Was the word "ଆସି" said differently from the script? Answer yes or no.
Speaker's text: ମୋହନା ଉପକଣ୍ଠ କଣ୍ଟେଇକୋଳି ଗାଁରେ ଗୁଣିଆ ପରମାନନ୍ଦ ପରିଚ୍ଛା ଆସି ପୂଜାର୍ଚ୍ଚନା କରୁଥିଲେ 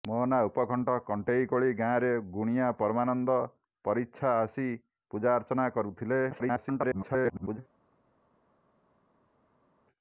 no